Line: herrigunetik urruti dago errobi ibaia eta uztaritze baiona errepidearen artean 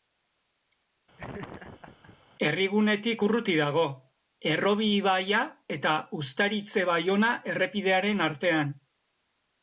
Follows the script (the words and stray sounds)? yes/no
no